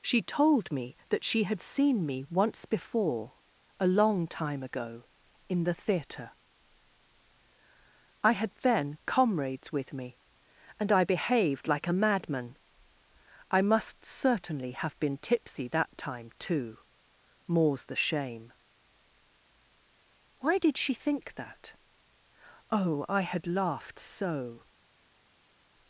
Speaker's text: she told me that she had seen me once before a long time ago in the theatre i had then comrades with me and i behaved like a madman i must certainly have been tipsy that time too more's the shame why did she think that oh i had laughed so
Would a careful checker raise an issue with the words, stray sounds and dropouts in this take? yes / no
no